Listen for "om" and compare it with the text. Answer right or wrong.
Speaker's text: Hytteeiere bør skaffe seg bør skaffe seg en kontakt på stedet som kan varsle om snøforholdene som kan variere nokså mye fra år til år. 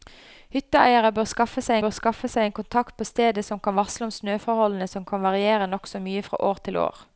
right